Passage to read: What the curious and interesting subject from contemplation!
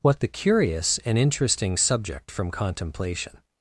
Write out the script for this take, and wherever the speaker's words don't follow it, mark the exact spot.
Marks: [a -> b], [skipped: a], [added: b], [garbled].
What the curious and interesting subject from contemplation!